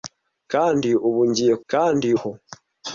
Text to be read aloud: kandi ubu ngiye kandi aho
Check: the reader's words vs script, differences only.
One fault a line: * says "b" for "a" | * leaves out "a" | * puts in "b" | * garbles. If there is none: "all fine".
all fine